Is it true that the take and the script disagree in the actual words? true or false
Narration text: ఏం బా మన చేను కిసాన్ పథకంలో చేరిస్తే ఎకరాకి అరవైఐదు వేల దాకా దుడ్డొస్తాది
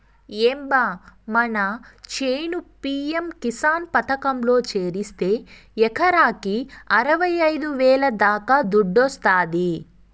true